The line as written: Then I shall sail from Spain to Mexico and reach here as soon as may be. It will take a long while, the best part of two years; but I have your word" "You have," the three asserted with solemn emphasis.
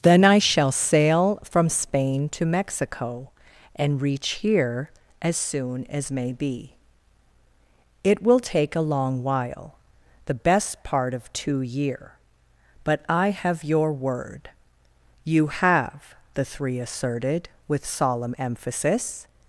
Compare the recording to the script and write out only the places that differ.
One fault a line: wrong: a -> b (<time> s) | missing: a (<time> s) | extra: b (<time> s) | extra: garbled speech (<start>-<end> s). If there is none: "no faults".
wrong: years -> year (11.6 s)